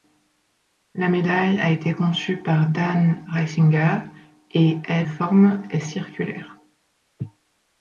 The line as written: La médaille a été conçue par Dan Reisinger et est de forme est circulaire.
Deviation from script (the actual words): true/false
true